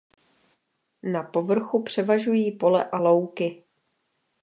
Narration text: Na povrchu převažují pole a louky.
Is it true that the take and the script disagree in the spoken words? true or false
false